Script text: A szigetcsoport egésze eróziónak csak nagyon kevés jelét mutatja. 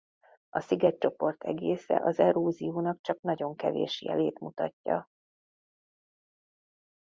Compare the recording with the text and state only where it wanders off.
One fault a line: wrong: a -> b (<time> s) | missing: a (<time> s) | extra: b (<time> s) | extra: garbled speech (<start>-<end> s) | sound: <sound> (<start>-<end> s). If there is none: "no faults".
extra: az (2.0 s)